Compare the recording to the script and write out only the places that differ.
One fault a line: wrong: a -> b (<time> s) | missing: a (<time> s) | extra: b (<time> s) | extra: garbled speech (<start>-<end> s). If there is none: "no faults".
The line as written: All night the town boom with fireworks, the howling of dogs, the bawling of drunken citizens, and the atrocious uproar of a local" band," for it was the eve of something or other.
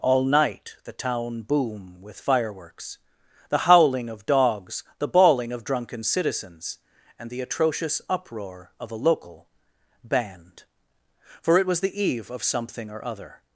no faults